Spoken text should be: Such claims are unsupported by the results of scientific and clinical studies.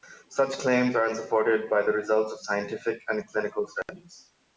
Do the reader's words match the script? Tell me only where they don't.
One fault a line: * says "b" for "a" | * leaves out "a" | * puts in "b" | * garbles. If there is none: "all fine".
all fine